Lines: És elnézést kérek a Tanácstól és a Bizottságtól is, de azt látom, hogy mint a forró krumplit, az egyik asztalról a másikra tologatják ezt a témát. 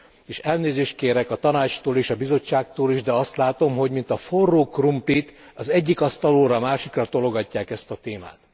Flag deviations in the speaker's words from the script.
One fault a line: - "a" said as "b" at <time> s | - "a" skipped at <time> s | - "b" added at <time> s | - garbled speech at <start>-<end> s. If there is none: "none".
none